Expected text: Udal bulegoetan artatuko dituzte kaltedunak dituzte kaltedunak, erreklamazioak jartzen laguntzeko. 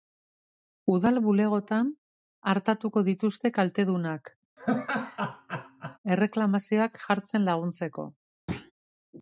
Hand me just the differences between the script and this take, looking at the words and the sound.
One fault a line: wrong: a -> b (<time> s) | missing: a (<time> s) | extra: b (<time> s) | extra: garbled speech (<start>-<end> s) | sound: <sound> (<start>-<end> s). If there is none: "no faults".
missing: dituzte kaltedunak (4.3 s)
sound: laugh (4.6-6.0 s)
sound: thud (8.5-8.7 s)